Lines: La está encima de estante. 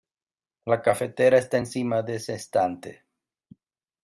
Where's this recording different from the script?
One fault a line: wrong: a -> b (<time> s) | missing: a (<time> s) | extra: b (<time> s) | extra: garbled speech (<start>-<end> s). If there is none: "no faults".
extra: cafetera (0.8 s)
extra: ese (2.2 s)